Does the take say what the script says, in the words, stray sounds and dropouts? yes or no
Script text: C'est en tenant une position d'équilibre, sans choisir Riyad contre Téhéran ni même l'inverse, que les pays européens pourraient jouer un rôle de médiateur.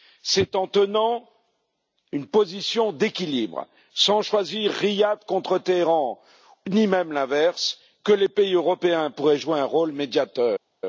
yes